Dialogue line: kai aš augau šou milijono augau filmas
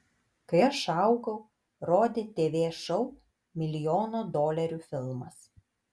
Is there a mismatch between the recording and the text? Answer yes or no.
yes